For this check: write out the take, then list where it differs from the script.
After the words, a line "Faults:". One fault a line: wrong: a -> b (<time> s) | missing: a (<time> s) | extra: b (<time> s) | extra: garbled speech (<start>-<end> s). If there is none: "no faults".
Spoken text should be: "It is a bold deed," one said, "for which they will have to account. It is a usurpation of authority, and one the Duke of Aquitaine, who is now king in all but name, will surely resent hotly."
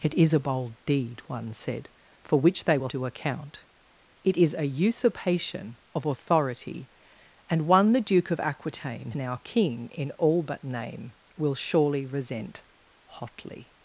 "It is a bold deed," one said, "for which they will to account. It is a usurpation of authority, and one the Duke of Aquitaine, now king in all but name, will surely resent hotly."
Faults:
missing: have (2.9 s)
missing: who is (9.1 s)